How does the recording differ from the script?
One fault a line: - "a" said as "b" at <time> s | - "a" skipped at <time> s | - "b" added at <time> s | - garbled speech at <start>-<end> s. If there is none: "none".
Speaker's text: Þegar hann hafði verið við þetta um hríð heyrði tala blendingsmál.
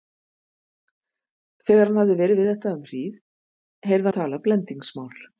none